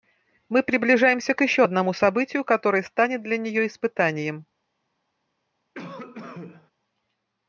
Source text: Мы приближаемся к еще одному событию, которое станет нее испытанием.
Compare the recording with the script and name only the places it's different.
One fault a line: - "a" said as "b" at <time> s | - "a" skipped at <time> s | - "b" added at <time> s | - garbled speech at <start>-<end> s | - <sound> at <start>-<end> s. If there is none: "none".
- "для" added at 3.2 s
- cough at 5.7-6.7 s